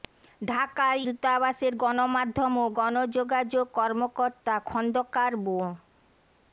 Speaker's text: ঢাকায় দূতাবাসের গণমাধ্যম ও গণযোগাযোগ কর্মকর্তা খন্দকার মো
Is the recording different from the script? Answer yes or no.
no